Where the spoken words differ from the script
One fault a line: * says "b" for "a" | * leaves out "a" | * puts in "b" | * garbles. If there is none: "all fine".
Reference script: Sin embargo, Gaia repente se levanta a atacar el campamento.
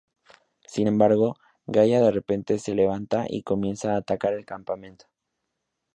* puts in "de"
* puts in "y comienza"